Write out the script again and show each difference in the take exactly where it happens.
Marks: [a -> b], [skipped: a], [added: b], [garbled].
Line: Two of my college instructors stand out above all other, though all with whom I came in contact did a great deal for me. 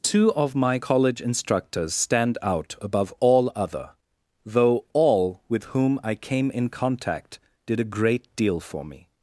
Two of my college instructors stand out above all other, though all with whom I came in contact did a great deal for me.